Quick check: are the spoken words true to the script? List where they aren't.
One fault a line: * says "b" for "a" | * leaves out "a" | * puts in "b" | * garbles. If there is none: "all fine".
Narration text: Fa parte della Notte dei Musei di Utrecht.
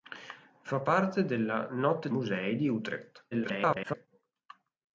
* leaves out "dei"
* garbles